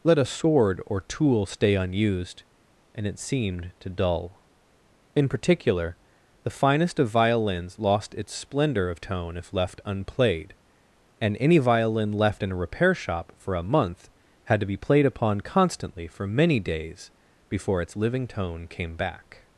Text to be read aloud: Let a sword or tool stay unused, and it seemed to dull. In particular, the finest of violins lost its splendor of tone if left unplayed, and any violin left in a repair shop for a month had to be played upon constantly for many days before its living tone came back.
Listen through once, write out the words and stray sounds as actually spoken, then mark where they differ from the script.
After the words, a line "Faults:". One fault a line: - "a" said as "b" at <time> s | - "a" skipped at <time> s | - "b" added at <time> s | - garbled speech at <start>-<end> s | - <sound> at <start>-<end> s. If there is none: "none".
Let a sword or tool stay unused, and it seemed to dull. In particular, the finest of violins lost its splendor of tone if left unplayed, and any violin left in a repair shop for a month had to be played upon constantly for many days before its living tone came back.
Faults:
none